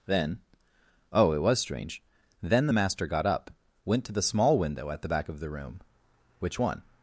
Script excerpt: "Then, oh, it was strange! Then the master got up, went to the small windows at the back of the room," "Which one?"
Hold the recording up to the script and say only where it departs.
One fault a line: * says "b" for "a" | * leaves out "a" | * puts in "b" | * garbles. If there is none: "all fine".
* says "window" for "windows"